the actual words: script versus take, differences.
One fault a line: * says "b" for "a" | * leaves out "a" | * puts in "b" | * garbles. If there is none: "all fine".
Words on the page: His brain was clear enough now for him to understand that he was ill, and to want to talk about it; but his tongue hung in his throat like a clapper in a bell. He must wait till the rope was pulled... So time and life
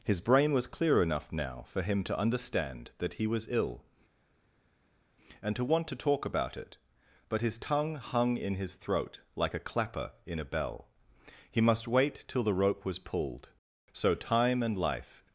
all fine